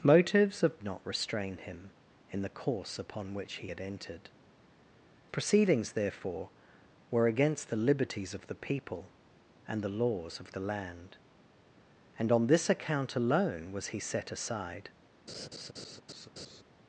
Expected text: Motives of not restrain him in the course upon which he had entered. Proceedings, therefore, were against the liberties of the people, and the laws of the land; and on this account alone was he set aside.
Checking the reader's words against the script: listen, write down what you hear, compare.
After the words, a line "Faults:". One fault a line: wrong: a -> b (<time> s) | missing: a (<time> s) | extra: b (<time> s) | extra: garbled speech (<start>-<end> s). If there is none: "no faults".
Motives of not restrain him in the course upon which he had entered. Proceedings, therefore, were against the liberties of the people, and the laws of the land; and on this account alone was he set aside.
Faults:
no faults